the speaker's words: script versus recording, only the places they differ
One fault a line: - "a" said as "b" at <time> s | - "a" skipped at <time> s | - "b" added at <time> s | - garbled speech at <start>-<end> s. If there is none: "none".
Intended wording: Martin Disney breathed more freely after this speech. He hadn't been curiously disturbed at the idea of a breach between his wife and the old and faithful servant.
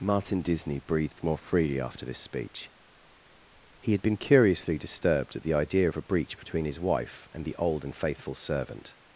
- "hadn't" said as "had" at 3.9 s